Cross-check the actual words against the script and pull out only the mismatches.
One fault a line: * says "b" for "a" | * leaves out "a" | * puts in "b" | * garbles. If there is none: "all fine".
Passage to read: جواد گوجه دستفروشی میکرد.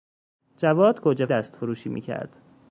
all fine